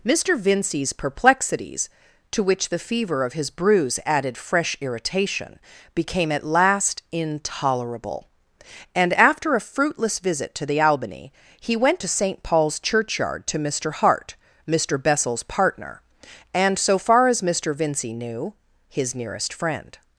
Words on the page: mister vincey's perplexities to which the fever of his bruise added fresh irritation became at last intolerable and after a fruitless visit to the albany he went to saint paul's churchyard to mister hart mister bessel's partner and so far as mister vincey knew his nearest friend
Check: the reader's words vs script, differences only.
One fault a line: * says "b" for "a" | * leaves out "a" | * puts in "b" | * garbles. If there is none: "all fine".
all fine